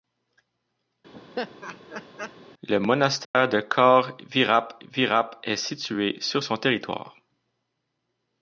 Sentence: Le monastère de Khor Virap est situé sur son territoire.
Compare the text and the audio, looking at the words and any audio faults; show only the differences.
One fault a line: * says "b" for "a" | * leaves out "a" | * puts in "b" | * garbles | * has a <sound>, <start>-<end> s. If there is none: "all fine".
* has a laugh, 1.1-2.4 s
* has a dropout, 3.2-3.3 s
* puts in "Virap"